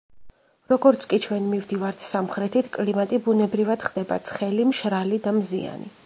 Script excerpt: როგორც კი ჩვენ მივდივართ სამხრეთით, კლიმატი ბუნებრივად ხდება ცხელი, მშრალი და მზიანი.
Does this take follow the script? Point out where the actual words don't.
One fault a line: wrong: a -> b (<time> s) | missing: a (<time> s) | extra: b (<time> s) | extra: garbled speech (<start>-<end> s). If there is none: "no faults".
no faults